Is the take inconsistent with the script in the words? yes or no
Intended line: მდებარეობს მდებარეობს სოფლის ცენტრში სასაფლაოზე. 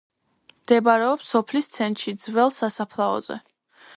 yes